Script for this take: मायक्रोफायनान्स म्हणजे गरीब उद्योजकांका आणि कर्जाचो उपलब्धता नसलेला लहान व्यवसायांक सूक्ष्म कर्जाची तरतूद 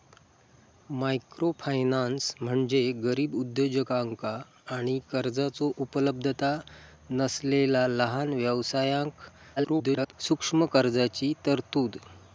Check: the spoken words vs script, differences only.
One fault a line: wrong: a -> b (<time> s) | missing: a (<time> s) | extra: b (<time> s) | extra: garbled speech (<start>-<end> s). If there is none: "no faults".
extra: garbled speech (9.6-10.1 s)